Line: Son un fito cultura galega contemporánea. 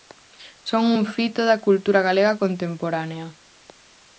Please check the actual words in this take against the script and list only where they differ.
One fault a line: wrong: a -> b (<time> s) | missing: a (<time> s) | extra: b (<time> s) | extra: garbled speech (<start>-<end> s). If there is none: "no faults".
extra: da (1.5 s)